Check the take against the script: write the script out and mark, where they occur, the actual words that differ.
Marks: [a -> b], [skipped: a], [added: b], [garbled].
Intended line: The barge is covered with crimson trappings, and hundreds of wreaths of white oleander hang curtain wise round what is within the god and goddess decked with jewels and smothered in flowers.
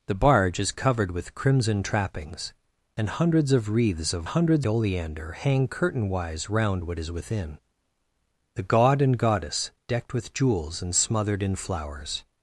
The barge is covered with crimson trappings, and hundreds of wreaths of [white -> hundreds] oleander hang curtain wise round what is within the god and goddess decked with jewels and smothered in flowers.